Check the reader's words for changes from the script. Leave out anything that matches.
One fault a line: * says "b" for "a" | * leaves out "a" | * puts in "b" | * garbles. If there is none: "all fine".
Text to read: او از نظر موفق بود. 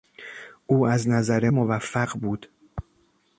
all fine